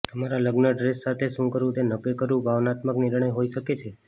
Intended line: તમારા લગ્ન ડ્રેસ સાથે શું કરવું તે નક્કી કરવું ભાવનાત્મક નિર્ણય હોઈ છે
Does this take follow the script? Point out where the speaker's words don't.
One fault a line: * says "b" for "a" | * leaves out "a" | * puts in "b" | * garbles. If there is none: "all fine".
* puts in "શકે"